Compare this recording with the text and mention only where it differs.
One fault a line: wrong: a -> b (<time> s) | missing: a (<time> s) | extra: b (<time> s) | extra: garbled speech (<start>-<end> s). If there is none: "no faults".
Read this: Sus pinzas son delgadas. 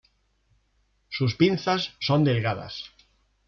no faults